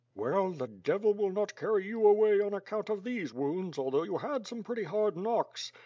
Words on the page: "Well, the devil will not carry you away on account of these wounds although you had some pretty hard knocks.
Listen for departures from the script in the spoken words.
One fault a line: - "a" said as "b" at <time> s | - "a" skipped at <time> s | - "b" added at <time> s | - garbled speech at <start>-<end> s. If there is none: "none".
none